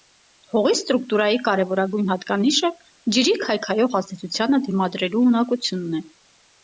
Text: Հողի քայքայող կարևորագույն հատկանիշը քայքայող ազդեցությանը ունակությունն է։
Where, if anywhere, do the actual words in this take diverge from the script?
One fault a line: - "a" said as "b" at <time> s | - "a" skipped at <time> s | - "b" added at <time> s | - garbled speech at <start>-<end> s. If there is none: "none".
- "քայքայող" said as "ստրուկտուրայի" at 0.8 s
- "ջրի" added at 3.2 s
- "դիմադրելու" added at 4.7 s